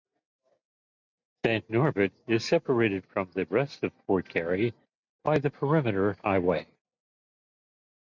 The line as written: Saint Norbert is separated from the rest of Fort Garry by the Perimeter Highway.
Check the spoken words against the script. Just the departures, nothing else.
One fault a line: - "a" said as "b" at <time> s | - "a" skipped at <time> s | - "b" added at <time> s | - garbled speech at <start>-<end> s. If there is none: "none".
none